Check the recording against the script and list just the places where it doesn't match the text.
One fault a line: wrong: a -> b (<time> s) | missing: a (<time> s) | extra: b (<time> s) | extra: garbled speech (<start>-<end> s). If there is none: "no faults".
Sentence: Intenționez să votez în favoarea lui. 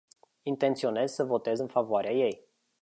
wrong: lui -> ei (2.1 s)